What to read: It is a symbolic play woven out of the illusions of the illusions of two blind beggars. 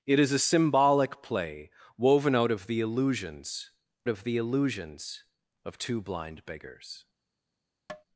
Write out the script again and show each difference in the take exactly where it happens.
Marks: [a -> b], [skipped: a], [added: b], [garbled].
It is a symbolic play woven out of the illusions of the illusions of two blind beggars.